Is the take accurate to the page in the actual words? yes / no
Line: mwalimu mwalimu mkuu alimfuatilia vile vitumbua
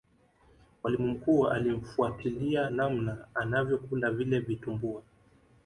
no